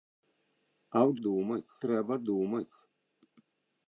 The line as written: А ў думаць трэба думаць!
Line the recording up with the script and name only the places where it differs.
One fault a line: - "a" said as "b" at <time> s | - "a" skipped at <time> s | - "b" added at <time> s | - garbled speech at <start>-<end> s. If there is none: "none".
none